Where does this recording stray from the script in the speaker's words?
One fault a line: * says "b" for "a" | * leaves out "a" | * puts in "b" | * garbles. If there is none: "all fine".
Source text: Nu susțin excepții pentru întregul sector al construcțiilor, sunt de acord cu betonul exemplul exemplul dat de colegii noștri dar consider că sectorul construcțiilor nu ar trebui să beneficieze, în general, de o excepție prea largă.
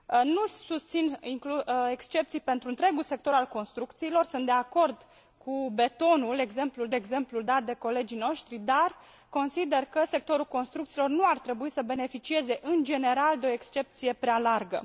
all fine